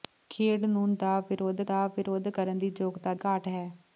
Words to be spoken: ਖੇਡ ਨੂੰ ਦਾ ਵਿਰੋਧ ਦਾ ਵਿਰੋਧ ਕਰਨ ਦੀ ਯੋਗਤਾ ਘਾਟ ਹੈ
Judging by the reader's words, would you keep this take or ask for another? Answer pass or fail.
pass